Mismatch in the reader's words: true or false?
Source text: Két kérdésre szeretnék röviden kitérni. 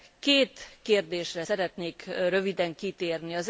false